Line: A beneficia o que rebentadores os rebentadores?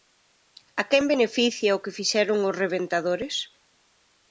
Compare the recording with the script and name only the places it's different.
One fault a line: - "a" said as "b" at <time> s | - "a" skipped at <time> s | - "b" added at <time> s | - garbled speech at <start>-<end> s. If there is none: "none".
- "quen" added at 0.9 s
- "rebentadores" said as "fixeron" at 2.0 s